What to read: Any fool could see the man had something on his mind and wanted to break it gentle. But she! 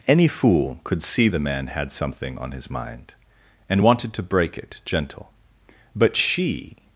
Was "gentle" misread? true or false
false